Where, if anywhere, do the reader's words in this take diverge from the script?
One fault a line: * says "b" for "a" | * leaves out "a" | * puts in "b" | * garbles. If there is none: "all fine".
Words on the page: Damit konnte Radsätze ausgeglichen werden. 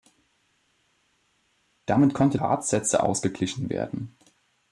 all fine